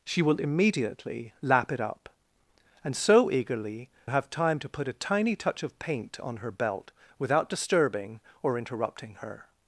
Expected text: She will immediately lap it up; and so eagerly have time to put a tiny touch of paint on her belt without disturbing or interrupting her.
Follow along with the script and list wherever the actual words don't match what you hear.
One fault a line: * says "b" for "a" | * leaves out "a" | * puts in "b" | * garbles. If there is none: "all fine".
all fine